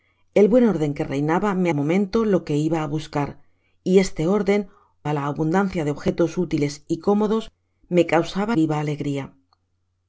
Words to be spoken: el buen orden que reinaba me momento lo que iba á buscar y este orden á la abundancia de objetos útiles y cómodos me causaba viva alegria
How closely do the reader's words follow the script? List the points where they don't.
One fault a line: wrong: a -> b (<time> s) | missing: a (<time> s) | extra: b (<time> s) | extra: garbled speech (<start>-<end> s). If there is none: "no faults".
no faults